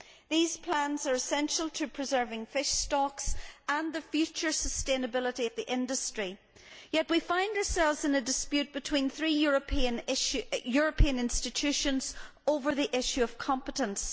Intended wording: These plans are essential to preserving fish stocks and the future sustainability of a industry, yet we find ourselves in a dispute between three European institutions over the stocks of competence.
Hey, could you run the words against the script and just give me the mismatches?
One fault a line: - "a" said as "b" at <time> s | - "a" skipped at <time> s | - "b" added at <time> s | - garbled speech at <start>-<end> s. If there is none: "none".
- "a" said as "the" at 5.6 s
- "stocks" said as "issue" at 13.0 s